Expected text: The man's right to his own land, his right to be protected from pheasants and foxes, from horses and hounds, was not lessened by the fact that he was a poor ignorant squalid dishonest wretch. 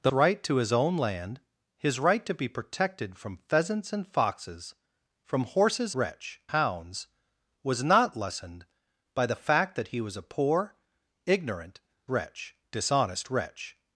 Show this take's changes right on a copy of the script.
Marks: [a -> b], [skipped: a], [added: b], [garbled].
The [skipped: man's] right to his own land, his right to be protected from pheasants and foxes, from horses [and -> wretch] hounds, was not lessened by the fact that he was a poor ignorant [squalid -> wretch] dishonest wretch.